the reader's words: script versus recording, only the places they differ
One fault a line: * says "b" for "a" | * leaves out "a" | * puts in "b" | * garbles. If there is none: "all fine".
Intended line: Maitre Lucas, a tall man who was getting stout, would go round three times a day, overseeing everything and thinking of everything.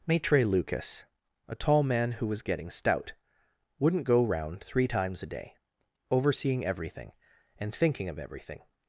* says "wouldn't" for "would"